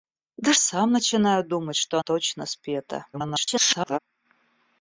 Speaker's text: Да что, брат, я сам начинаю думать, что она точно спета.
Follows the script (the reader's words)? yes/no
no